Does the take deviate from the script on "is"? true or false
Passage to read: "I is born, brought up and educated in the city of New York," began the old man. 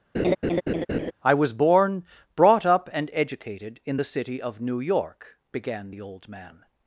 true